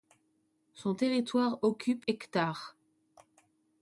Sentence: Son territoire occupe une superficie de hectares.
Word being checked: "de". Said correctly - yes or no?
no